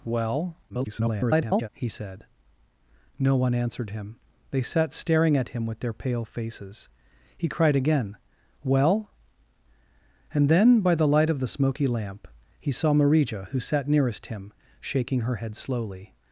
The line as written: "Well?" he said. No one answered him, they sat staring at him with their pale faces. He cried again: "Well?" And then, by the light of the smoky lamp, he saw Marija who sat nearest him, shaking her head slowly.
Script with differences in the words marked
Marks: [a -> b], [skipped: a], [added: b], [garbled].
"Well?" [garbled] he said. No one answered him, they sat staring at him with their pale faces. He cried again: "Well?" And then, by the light of the smoky lamp, he saw Marija who sat nearest him, shaking her head slowly.